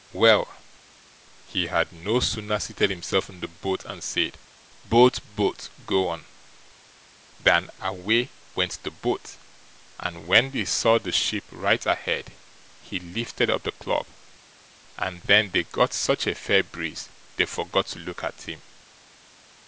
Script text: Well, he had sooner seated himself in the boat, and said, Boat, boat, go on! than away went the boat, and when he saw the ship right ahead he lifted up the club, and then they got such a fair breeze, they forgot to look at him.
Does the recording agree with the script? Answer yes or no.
no